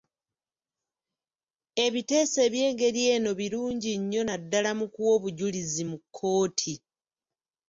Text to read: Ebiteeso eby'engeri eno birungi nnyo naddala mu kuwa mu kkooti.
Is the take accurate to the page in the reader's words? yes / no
no